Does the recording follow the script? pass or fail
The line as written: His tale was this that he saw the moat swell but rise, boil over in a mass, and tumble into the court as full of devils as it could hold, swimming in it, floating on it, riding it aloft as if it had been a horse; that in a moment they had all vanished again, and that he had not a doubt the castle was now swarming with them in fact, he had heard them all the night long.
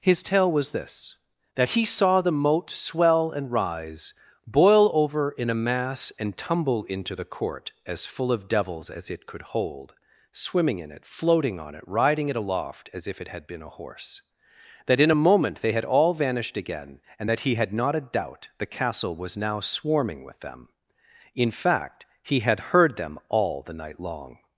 fail